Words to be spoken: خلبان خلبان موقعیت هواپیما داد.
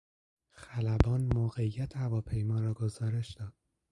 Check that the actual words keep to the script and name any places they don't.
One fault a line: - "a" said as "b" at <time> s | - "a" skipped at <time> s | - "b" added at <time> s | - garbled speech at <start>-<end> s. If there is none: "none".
- "خلبان" skipped at 1.3 s
- "را گزارش" added at 2.6 s